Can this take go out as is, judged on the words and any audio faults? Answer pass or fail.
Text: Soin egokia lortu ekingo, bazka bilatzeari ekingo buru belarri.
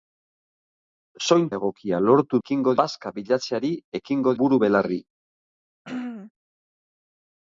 fail